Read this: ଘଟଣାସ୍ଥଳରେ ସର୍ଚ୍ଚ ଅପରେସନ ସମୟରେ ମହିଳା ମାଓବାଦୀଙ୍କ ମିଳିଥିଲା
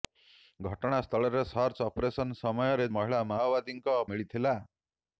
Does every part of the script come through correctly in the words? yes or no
yes